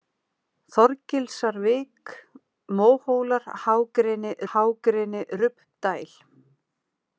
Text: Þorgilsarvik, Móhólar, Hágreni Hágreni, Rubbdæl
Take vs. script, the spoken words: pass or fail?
pass